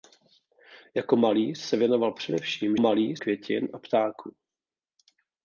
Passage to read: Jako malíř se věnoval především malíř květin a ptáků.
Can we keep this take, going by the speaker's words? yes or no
yes